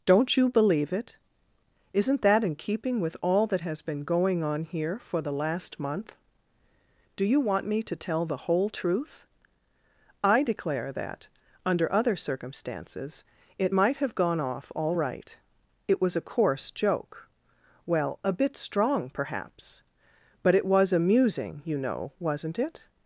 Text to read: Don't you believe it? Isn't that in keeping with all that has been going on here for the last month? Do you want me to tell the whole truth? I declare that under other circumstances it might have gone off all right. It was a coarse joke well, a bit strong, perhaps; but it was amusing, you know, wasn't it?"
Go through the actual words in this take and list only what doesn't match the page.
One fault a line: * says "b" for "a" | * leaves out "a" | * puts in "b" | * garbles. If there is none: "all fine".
all fine